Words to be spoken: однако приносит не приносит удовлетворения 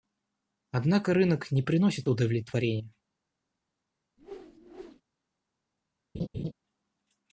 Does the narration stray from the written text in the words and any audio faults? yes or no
yes